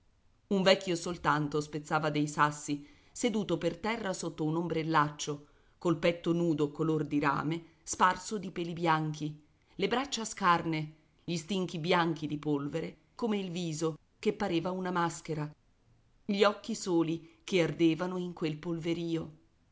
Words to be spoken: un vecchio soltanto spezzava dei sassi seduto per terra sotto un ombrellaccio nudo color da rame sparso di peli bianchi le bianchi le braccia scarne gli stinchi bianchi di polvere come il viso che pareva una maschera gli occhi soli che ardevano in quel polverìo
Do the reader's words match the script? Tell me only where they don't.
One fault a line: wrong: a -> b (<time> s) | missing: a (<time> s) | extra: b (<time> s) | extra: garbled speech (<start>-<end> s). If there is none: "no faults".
extra: col petto (5.8 s)
wrong: da -> di (7.0 s)
missing: bianchi le (9.9 s)